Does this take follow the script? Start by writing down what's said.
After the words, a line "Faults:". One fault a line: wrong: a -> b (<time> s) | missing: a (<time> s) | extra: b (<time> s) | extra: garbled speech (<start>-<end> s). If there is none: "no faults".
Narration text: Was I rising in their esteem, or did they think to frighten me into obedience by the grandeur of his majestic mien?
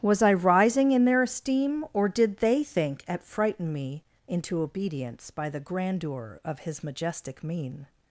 Was I rising in their esteem, or did they think at frighten me into obedience by the grandeur of his majestic mien?
Faults:
wrong: to -> at (3.1 s)